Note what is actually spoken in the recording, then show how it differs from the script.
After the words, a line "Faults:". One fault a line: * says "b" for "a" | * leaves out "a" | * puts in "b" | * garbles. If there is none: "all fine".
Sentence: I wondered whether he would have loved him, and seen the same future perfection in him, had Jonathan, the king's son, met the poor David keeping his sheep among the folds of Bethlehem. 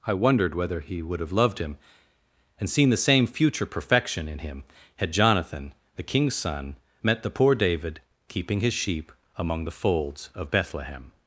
I wondered whether he would have loved him, and seen the same future perfection in him, had Jonathan, the king's son, met the poor David keeping his sheep among the folds of Bethlehem.
Faults:
all fine